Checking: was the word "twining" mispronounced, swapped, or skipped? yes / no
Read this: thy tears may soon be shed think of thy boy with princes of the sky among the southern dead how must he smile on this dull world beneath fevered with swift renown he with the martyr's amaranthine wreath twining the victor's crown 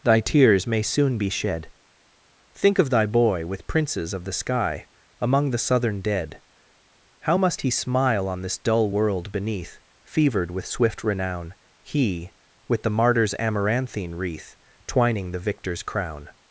no